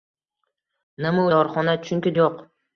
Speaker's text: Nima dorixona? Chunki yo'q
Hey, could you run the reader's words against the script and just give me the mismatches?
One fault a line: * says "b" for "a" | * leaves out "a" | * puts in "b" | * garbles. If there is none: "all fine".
all fine